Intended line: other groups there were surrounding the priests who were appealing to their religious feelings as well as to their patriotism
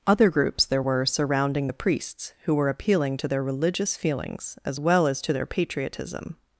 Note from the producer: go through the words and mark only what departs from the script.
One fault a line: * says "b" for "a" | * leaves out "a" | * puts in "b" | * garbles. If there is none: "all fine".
all fine